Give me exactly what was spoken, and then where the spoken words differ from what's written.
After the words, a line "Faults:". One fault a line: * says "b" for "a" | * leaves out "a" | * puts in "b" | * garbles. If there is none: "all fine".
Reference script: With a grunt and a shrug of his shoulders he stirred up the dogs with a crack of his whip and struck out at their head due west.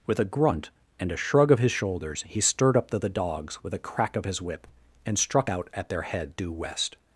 With a grunt and a shrug of his shoulders he stirred up the the dogs with a crack of his whip and struck out at their head due west.
Faults:
* puts in "the"